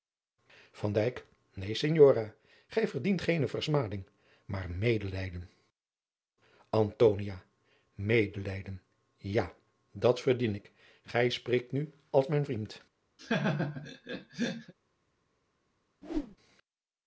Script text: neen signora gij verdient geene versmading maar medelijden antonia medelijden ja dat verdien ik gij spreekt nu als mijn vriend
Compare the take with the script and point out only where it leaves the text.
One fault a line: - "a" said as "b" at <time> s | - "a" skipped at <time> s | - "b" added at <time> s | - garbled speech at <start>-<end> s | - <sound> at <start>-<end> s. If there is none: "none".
- laugh at 13.2-14.7 s
- whoosh at 16.0-16.4 s